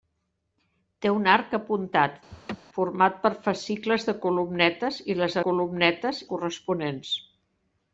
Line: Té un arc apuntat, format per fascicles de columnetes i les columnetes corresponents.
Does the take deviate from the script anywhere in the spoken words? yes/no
no